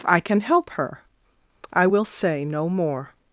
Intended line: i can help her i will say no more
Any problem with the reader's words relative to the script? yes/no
no